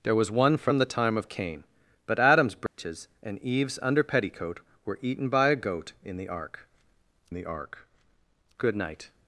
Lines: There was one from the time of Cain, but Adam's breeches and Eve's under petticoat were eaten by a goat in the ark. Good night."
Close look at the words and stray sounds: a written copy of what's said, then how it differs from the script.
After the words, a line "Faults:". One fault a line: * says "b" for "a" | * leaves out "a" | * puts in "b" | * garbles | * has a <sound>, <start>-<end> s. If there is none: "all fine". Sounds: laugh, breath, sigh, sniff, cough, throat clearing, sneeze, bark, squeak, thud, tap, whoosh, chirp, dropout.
There was one from the time of Cain, but Adam's breeches and Eve's under petticoat were eaten by a goat in the ark the ark. Good night."
Faults:
* has a dropout, 2.7-2.8 s
* puts in "the ark"